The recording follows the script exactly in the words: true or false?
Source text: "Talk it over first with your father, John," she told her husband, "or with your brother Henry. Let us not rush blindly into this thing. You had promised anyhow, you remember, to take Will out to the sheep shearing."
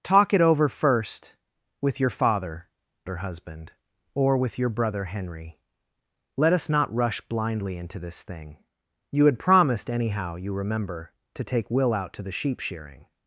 false